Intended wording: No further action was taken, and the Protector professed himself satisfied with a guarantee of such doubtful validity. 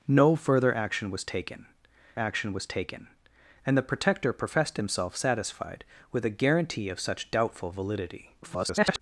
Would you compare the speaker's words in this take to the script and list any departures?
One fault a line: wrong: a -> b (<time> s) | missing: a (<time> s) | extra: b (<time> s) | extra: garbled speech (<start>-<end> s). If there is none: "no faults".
extra: action was taken (2.2 s)
extra: garbled speech (8.4-9.0 s)